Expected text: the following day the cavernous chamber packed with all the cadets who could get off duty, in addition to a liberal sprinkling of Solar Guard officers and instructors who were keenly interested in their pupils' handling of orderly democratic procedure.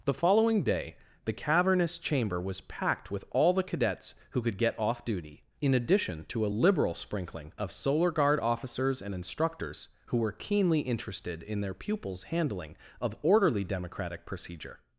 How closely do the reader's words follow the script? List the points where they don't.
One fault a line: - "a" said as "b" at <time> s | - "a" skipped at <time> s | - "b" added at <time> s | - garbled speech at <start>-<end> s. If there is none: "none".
- "was" added at 2.4 s